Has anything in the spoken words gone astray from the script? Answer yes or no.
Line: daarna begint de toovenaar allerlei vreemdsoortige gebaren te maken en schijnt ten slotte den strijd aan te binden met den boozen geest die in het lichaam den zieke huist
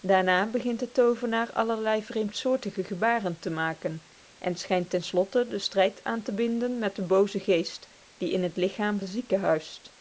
no